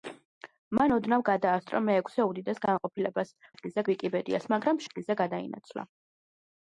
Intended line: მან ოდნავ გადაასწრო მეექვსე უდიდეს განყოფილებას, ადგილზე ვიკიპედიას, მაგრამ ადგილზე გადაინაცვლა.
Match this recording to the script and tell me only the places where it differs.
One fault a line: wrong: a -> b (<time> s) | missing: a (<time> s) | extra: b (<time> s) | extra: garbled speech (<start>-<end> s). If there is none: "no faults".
no faults